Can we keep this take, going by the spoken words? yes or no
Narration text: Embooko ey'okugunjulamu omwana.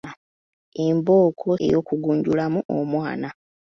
yes